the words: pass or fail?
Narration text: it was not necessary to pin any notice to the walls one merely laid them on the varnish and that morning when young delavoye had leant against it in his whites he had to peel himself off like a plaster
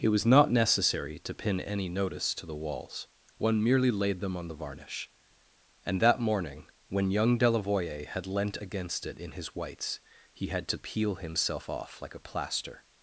pass